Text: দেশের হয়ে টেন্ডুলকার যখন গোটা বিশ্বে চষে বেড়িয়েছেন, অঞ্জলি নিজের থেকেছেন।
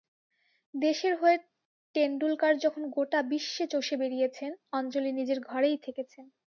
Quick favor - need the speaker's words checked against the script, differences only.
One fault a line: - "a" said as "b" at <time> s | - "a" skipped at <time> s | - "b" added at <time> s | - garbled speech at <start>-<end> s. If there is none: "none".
- "ঘরেই" added at 5.5 s